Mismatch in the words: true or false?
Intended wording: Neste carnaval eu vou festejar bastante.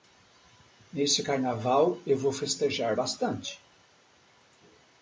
false